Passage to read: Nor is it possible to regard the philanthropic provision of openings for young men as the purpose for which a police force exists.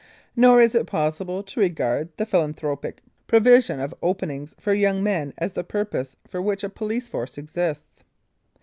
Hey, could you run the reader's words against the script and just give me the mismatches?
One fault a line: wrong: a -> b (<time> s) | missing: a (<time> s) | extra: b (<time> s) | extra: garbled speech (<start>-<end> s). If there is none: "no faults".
no faults